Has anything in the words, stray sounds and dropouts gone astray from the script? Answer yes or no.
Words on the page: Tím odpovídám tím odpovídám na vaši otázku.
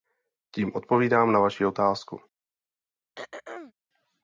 yes